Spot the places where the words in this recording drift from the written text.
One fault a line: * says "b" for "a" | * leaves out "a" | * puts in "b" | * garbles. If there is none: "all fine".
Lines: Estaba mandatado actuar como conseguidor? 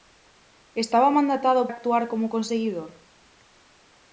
all fine